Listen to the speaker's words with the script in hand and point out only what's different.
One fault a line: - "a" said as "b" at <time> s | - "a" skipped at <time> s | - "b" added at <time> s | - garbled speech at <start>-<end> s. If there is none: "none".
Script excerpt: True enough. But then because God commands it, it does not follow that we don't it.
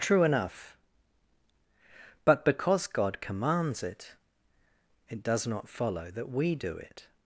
- "then" skipped at 2.4 s
- "don't" said as "do" at 6.5 s